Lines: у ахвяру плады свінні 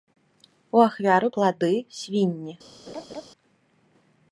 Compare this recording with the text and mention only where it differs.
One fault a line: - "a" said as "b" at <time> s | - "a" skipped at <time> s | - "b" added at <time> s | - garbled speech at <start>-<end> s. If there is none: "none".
none